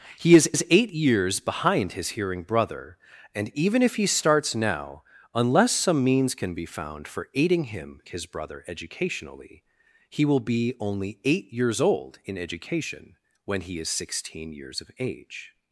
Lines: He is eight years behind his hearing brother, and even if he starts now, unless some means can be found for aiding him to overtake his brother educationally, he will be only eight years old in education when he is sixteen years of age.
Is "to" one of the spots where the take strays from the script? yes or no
yes